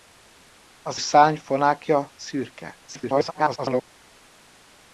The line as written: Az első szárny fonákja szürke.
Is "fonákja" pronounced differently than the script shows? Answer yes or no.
no